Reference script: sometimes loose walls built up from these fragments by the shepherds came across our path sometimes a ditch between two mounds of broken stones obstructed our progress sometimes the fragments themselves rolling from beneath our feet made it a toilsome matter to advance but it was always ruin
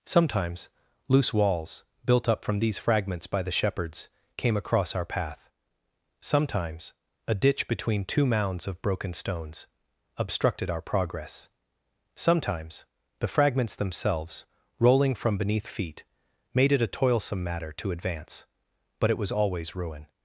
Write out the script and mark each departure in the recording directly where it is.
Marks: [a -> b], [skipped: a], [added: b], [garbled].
sometimes loose walls built up from these fragments by the shepherds came across our path sometimes a ditch between two mounds of broken stones obstructed our progress sometimes the fragments themselves rolling from beneath [skipped: our] feet made it a toilsome matter to advance but it was always ruin